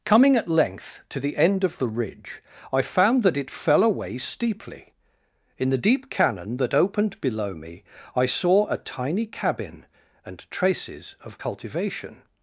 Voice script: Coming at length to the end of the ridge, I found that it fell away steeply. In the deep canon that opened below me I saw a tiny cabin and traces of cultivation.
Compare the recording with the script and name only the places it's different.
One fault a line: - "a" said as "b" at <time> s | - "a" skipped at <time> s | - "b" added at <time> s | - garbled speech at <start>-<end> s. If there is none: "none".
none